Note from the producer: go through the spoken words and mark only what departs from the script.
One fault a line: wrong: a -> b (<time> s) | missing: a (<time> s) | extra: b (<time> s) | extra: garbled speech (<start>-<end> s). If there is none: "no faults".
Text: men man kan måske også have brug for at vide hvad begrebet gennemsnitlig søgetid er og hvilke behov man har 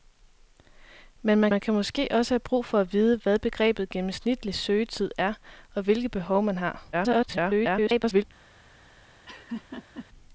extra: man (1.5 s)
extra: garbled speech (6.9-8.2 s)